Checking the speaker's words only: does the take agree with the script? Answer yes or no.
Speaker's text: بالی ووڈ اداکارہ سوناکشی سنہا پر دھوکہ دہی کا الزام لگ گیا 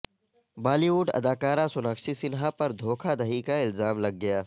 yes